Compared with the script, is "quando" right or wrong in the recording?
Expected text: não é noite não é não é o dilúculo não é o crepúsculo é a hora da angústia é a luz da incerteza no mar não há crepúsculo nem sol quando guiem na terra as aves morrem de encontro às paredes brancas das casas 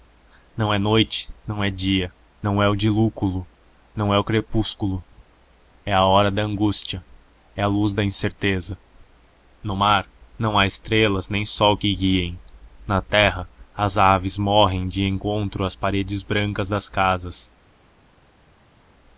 wrong